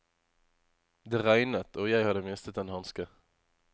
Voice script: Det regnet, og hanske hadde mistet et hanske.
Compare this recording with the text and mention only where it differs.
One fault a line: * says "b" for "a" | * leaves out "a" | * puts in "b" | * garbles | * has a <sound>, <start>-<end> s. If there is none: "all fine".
* says "jeg" for "hanske"
* says "en" for "et"